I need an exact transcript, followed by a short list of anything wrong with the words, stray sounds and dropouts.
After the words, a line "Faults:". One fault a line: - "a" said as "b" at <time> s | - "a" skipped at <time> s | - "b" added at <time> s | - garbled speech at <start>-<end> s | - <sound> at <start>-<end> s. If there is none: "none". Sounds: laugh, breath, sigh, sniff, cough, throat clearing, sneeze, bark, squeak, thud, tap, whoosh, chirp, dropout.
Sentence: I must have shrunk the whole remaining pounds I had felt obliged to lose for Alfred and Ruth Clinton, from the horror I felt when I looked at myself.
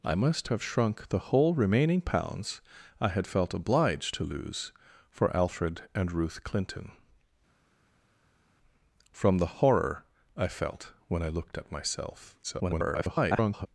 I must have shrunk the whole remaining pounds I had felt obliged to lose for Alfred and Ruth Clinton, from the horror I felt when I looked at myself. [garbled]
Faults:
- garbled speech at 12.4-13.7 s